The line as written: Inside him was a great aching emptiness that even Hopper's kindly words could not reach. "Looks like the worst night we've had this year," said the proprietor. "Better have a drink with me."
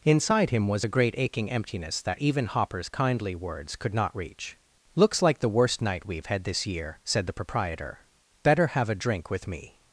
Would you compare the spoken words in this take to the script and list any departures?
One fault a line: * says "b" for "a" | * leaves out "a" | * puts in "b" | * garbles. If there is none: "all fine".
all fine